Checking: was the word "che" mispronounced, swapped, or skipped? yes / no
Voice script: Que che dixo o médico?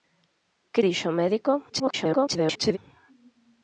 yes